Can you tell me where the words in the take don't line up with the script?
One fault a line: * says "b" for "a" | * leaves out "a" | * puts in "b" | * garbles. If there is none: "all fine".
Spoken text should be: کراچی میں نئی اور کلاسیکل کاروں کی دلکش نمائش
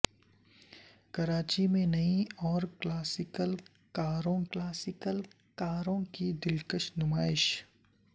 * puts in "کلاسیکل کاروں"